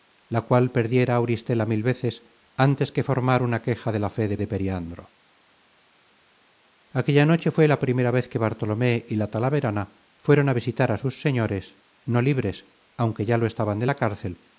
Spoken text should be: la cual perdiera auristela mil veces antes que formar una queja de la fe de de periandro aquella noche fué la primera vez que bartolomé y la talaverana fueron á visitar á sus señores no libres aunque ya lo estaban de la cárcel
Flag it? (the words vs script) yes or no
no